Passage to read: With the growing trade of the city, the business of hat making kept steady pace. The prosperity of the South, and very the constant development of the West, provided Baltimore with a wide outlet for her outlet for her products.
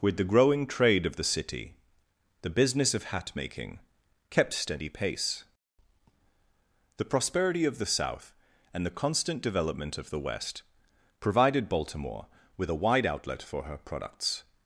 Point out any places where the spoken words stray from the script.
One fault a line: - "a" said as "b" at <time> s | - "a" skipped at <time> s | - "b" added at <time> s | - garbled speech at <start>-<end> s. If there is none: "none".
- "very" skipped at 8.8 s
- "outlet for her" skipped at 13.8 s